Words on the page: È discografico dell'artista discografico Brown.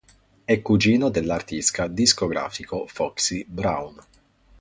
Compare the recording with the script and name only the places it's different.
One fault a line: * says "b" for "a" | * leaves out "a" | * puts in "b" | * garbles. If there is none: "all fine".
* says "cugino" for "discografico"
* puts in "Foxy"